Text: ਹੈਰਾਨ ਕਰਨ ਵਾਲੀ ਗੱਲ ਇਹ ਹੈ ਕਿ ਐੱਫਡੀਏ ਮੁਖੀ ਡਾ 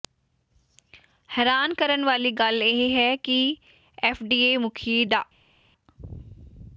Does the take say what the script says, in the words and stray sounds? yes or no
yes